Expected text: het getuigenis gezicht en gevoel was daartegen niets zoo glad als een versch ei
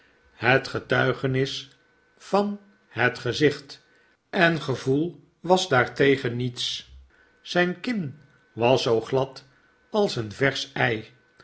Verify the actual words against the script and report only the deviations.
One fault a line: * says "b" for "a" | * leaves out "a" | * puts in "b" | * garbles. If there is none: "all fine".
* puts in "van het"
* puts in "zijn kin was"